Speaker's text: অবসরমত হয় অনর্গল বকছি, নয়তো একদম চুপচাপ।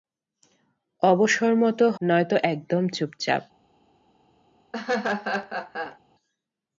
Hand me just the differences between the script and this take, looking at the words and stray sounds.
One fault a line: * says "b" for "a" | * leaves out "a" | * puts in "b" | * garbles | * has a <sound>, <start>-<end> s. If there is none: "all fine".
* leaves out "হয় অনর্গল বকছি"
* has a laugh, 4.7-6.0 s